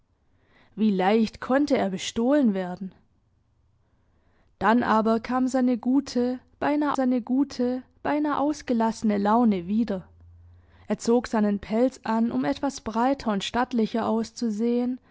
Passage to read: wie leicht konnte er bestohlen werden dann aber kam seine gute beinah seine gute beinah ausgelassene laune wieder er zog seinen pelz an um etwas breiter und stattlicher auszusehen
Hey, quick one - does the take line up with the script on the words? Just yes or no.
yes